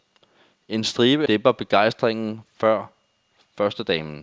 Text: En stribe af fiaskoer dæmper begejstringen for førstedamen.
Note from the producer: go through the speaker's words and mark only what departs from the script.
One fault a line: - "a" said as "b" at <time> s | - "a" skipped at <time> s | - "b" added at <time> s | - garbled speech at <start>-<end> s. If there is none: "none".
- "af fiaskoer" skipped at 1.3 s